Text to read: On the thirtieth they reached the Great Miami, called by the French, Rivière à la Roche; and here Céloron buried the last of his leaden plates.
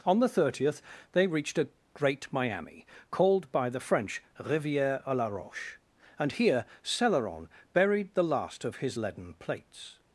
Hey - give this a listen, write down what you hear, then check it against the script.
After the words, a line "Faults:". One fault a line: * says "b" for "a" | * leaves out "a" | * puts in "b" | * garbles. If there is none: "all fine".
On the thirtieth they reached a Great Miami, called by the French, Rivière à la Roche; and here Céloron buried the last of his leaden plates.
Faults:
* says "a" for "the"